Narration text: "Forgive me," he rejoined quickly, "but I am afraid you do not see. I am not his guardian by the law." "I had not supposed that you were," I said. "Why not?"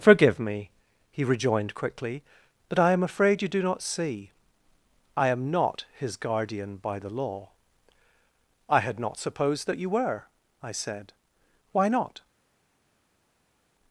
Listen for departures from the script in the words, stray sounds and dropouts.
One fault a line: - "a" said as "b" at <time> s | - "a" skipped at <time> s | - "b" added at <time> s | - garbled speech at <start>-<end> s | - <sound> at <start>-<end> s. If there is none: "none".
none